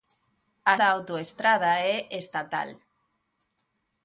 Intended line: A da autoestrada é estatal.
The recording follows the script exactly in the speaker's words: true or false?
true